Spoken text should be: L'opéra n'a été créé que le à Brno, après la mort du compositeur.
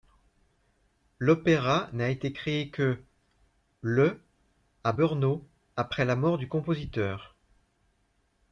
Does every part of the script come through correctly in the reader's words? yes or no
yes